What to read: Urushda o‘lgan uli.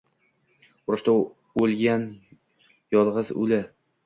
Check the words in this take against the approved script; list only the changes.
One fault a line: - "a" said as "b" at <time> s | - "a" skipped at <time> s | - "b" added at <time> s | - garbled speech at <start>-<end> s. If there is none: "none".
- "yolg‘iz" added at 3.0 s